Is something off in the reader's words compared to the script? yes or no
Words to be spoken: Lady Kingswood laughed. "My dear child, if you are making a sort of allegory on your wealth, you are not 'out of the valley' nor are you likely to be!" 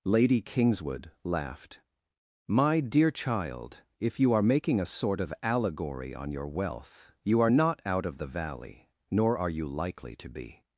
no